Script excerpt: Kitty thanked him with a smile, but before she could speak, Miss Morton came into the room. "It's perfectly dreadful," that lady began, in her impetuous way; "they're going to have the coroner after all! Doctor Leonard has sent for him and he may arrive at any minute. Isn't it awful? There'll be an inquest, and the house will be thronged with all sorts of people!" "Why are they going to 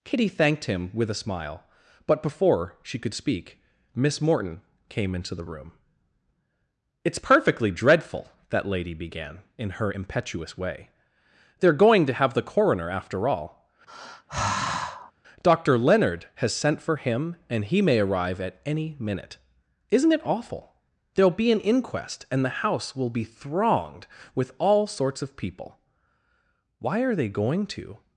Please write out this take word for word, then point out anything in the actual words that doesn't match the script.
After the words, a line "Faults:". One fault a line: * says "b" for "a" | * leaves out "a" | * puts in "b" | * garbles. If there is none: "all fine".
Kitty thanked him with a smile, but before she could speak, Miss Morton came into the room. "It's perfectly dreadful," that lady began, in her impetuous way; "they're going to have the coroner after all! Doctor Leonard has sent for him and he may arrive at any minute. Isn't it awful? There'll be an inquest, and the house will be thronged with all sorts of people!" "Why are they going to
Faults:
all fine